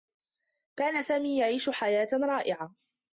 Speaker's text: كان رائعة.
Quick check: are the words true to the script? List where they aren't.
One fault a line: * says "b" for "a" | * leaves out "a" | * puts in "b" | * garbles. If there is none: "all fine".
* puts in "سامي يعيش حياة"